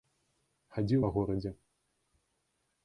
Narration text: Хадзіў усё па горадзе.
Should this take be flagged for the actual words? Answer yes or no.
yes